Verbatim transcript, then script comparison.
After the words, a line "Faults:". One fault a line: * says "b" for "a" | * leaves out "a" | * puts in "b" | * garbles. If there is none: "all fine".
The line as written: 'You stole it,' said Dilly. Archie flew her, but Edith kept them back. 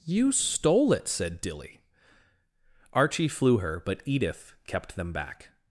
'You stole it,' said Dilly. Archie flew her, but Edith kept them back.
Faults:
all fine